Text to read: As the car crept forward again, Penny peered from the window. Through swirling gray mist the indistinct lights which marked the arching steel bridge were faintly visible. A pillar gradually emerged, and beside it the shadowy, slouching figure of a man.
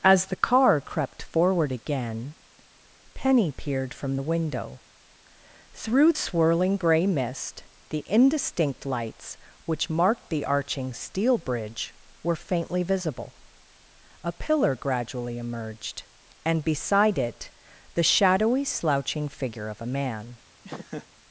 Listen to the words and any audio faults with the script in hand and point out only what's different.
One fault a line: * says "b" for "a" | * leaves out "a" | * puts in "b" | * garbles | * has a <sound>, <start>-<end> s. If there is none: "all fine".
* has a laugh, 20.6-21.1 s